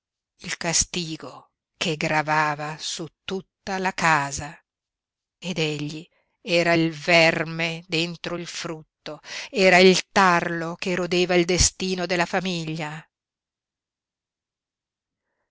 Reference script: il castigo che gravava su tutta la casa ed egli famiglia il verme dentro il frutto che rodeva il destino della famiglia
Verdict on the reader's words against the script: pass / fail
fail